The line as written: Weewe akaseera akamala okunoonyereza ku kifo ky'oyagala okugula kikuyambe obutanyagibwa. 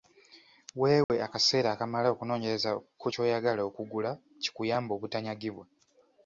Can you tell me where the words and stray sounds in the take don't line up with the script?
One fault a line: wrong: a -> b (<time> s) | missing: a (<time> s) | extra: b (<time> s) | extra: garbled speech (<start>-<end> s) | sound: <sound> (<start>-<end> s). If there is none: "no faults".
sound: dropout (1.0-1.1 s)
missing: kifo (3.1 s)